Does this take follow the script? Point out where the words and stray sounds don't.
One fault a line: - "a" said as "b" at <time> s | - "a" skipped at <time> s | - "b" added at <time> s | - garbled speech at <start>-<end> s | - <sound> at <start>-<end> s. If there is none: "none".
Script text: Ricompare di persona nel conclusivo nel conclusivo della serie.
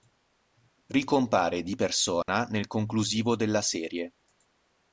- dropout at 2.2-2.3 s
- "nel conclusivo" skipped at 3.4 s